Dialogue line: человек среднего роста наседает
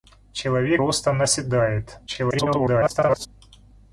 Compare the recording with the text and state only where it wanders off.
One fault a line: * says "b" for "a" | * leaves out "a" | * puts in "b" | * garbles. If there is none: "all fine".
* leaves out "среднего"
* garbles